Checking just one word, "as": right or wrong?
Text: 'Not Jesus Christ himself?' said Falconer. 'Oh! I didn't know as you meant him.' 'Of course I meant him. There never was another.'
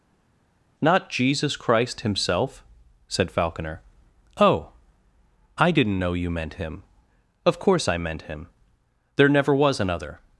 wrong